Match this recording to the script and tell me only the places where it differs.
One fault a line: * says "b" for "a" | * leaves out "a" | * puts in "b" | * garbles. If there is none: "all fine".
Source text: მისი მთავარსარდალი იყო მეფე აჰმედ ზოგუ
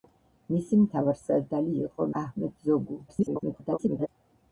* leaves out "მეფე"
* garbles